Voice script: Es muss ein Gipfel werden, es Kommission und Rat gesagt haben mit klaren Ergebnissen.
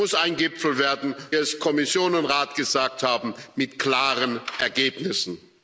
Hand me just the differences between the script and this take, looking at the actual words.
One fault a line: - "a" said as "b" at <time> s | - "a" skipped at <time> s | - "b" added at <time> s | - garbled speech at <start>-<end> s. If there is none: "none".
none